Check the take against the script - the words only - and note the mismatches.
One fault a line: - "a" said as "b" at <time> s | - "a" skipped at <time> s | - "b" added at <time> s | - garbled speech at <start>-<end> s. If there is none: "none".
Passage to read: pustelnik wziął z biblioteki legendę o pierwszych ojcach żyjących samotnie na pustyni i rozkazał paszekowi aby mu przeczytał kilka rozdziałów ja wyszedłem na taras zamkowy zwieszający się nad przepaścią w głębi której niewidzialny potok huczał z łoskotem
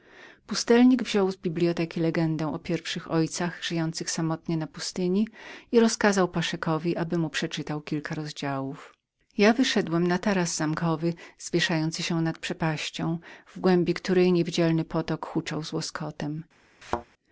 none